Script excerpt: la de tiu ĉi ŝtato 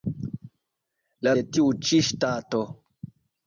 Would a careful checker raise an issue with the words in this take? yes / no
no